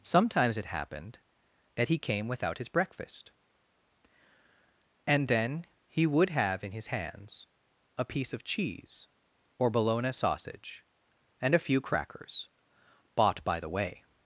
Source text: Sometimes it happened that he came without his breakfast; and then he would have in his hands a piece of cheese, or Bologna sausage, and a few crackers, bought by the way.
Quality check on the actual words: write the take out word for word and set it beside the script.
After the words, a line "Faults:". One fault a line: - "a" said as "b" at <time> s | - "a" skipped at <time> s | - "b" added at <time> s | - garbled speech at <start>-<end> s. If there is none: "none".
Sometimes it happened that he came without his breakfast; and then he would have in his hands a piece of cheese, or Bologna sausage, and a few crackers, bought by the way.
Faults:
none